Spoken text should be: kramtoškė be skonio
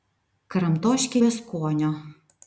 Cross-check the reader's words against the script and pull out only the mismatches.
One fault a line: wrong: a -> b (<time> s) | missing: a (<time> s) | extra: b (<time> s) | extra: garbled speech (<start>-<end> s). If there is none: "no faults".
no faults